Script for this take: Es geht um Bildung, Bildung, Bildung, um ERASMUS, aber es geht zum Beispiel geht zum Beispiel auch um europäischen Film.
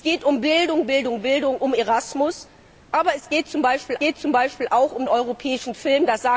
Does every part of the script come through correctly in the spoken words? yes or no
yes